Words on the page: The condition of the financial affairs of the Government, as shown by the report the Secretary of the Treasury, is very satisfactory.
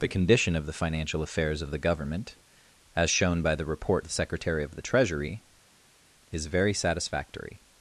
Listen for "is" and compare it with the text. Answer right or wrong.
right